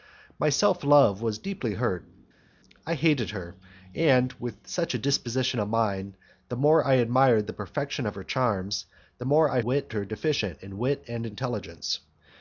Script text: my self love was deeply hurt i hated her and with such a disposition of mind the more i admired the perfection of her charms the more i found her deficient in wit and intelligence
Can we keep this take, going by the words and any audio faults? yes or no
no